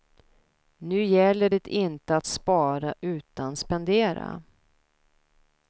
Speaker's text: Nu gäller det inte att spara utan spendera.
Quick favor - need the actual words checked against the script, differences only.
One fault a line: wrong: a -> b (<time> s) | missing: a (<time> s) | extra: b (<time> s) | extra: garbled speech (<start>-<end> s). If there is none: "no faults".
no faults